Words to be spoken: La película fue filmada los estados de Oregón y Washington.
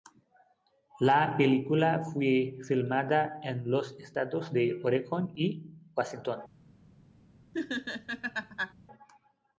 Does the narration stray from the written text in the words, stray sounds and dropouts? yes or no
yes